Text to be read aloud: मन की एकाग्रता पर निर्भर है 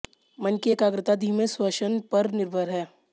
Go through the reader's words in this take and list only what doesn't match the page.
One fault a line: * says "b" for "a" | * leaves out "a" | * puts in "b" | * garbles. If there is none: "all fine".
* puts in "धीमे श्वसन"